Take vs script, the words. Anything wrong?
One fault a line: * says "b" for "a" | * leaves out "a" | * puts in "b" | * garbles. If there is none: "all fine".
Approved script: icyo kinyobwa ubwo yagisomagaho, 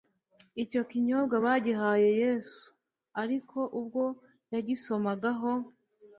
* puts in "bagihaye yesu ariko"